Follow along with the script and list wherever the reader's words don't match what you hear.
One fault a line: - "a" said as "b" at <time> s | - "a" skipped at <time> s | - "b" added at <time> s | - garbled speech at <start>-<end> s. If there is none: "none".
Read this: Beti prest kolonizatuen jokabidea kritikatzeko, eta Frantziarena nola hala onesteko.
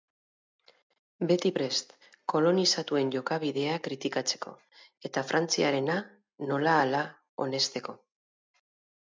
none